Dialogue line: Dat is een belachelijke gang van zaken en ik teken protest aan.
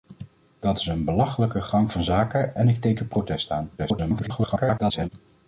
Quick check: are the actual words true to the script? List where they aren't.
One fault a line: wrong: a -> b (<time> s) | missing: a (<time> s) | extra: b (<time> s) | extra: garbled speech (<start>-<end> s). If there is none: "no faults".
extra: garbled speech (3.8-5.1 s)